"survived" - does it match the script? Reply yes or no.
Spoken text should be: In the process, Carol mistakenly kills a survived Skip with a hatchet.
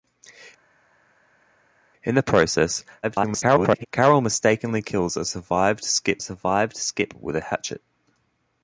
yes